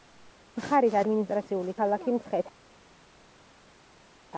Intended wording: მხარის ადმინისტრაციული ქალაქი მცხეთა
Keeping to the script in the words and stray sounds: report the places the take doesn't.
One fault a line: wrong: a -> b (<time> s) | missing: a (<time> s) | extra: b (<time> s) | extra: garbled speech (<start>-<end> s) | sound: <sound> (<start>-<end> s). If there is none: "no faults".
no faults